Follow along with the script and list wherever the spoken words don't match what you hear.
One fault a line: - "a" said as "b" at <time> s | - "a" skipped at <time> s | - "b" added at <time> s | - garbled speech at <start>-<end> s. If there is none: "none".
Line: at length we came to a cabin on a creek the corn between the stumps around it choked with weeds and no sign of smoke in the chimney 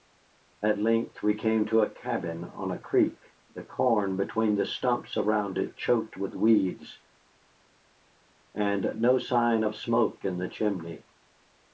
none